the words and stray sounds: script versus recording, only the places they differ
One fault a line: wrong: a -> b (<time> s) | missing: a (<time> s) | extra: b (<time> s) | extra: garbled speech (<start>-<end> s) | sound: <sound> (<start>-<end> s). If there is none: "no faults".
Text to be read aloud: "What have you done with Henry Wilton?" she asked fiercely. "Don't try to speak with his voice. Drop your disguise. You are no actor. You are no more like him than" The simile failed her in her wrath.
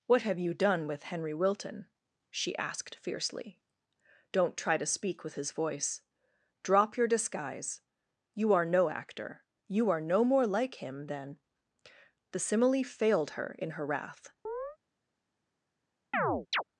sound: chirp (14.4-14.8 s)
sound: chirp (16.1-16.6 s)